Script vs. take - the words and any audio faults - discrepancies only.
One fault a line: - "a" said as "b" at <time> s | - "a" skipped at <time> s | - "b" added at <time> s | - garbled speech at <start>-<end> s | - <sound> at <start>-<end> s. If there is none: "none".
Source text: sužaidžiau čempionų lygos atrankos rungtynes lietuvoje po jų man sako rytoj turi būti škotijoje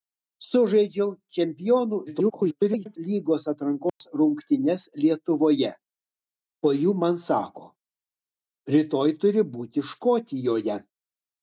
- garbled speech at 2.1-3.0 s
- dropout at 3.9-4.0 s